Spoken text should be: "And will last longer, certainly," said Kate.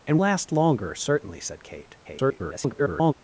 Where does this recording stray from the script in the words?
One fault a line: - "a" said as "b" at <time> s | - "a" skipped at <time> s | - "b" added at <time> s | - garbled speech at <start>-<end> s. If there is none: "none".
- "will" skipped at 0.2 s
- garbled speech at 2.0-3.1 s